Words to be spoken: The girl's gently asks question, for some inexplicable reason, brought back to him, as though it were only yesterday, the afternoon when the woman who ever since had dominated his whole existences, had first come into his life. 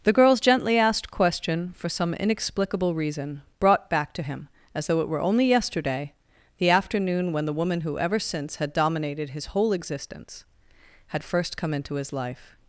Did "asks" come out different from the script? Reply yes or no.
yes